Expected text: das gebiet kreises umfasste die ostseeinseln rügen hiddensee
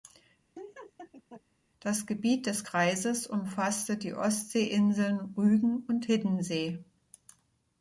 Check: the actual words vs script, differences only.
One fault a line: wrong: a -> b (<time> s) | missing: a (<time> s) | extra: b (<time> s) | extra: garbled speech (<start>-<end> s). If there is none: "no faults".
extra: des (2.5 s)
extra: und (5.9 s)